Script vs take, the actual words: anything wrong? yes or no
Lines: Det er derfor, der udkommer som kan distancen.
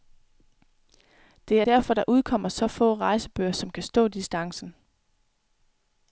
yes